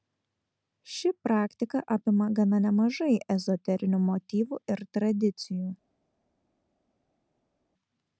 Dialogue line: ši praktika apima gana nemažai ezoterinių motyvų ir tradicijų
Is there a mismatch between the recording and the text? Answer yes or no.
no